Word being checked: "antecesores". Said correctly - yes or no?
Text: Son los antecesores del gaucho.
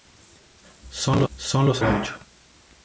no